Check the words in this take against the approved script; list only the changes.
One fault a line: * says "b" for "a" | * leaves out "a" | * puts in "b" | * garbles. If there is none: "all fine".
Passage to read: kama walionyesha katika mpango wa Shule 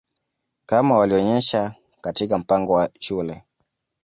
all fine